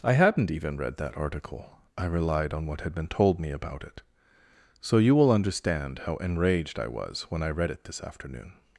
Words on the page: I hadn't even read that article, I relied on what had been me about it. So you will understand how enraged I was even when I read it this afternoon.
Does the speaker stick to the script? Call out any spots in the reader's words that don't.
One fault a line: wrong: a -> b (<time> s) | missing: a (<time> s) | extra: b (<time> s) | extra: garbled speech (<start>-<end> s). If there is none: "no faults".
extra: told (3.1 s)
missing: even (7.3 s)